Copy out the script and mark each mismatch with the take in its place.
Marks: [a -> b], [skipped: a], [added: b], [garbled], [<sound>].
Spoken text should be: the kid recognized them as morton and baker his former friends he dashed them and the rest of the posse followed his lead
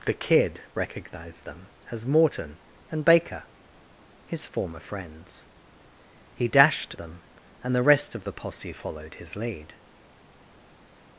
the kid recognized them as morton and baker his former friends he dashed them and the rest of the posse followed his lead